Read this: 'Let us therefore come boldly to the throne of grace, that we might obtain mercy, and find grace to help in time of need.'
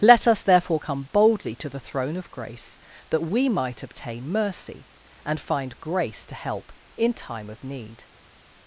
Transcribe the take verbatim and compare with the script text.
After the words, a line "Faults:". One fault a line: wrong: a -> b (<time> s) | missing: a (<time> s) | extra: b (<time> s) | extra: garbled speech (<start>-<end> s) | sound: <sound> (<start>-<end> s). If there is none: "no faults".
'Let us therefore come boldly to the throne of grace, that we might obtain mercy, and find grace to help in time of need.'
Faults:
no faults